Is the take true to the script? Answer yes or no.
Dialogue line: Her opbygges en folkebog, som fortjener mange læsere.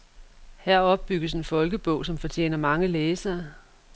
yes